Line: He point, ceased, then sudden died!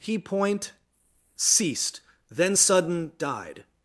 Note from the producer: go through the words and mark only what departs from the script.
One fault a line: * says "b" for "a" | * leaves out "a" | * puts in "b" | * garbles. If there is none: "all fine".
all fine